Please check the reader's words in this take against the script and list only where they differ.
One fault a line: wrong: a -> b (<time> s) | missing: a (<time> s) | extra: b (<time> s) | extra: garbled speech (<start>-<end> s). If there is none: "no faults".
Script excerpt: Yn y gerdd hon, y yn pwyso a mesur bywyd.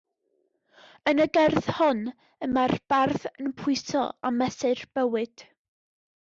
extra: mae'r bardd (2.5 s)